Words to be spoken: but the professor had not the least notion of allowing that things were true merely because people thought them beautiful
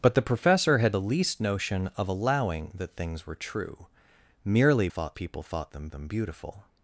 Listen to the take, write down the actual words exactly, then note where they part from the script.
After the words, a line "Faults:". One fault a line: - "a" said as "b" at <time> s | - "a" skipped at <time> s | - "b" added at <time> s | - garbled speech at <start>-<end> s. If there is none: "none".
but the professor had the least notion of allowing that things were true merely thought people thought them them beautiful
Faults:
- "not" skipped at 0.9 s
- "because" said as "thought" at 4.9 s
- "them" added at 5.9 s